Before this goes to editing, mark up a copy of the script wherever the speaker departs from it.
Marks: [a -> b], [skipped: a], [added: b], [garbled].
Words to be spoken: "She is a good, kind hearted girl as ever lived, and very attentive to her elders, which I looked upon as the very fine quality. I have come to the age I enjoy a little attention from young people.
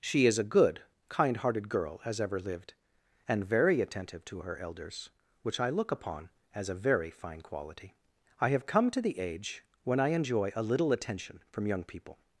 "She is a good, kind hearted girl as ever lived, and very attentive to her elders, which I [looked -> look] upon as [the -> a] very fine quality. I have come to the age [added: when] I enjoy a little attention from young people.